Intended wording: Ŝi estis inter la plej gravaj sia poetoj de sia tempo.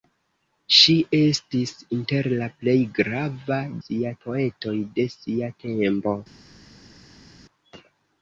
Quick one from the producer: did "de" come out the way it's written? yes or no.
yes